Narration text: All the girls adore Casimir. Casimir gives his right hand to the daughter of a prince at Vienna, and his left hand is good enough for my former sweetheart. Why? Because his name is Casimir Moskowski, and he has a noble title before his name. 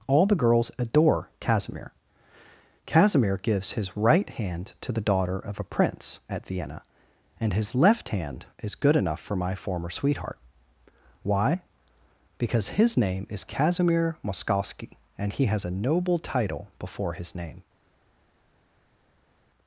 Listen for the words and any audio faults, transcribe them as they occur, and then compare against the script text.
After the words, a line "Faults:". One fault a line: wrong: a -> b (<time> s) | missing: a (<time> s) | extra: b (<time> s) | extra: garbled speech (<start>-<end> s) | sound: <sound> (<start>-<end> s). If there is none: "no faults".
All the girls adore Casimir. Casimir gives his right hand to the daughter of a prince at Vienna, and his left hand is good enough for my former sweetheart. Why? Because his name is Casimir Moskowski, and he has a noble title before his name.
Faults:
no faults